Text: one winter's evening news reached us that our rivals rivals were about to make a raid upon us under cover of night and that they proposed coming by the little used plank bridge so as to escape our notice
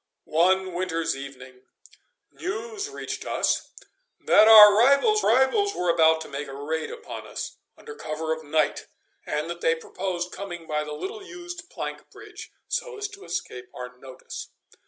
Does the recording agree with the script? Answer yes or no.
yes